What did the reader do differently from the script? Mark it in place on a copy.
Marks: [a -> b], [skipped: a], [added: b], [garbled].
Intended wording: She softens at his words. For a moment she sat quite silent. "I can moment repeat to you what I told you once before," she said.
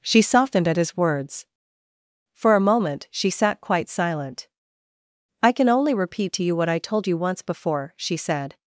She [softens -> softened] at his words. For a moment she sat quite silent. "I can [moment -> only] repeat to you what I told you once before," she said.